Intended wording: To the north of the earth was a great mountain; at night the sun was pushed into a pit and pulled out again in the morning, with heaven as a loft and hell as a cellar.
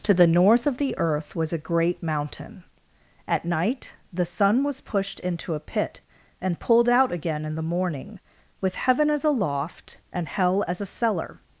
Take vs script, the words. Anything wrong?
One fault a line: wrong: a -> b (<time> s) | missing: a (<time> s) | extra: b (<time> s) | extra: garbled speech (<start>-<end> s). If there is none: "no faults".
no faults